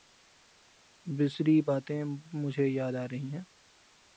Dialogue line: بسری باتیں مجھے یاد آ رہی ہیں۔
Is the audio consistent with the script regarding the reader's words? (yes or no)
yes